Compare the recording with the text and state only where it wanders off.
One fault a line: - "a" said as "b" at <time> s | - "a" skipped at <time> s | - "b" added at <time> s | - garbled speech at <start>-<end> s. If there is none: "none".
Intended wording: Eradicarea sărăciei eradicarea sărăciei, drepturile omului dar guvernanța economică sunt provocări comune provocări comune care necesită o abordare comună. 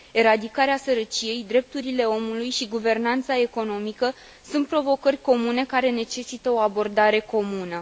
- "eradicarea sărăciei" skipped at 1.5 s
- "dar" said as "și" at 2.5 s
- "provocări comune" skipped at 5.7 s